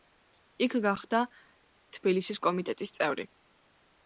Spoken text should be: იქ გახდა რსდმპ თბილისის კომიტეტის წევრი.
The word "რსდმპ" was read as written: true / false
false